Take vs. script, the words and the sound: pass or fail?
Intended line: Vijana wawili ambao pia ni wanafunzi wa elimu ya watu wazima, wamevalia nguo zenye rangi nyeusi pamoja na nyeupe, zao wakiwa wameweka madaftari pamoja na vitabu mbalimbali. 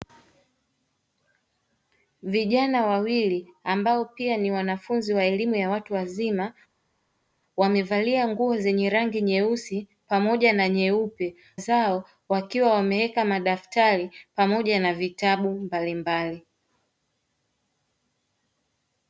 pass